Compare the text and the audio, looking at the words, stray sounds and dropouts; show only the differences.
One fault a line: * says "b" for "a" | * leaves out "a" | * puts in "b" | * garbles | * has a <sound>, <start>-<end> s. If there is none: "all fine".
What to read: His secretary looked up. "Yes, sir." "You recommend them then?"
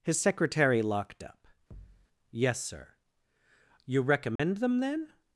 * says "locked" for "looked"
* has a thud, 1.7-2.1 s
* has a dropout, 4.4-4.4 s